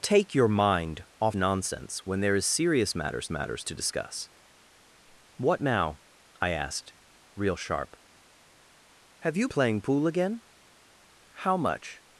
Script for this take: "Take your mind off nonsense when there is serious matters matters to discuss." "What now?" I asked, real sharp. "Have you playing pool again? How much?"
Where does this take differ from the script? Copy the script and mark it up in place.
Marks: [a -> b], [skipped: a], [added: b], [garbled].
"Take your mind off nonsense when there is serious matters matters to discuss." "What now?" I asked, real sharp. "Have you playing pool again? How much?"